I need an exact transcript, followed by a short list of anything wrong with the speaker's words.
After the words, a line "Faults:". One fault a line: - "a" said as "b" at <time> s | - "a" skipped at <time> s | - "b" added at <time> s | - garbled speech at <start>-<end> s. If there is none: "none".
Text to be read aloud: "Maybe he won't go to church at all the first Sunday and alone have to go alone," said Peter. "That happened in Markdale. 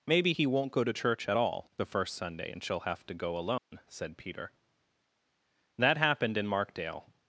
"Maybe he won't go to church at all the first Sunday and she'll have to go alone," said Peter. "That happened in Markdale.
Faults:
- "alone" said as "she'll" at 2.6 s